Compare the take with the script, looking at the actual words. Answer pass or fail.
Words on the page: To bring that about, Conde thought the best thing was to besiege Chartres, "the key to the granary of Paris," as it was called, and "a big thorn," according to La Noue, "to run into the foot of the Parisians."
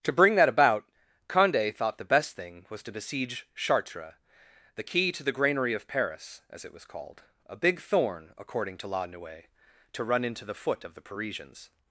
fail